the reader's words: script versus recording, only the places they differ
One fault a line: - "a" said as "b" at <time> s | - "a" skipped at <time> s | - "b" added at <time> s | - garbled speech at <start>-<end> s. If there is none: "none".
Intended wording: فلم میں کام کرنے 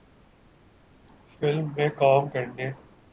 none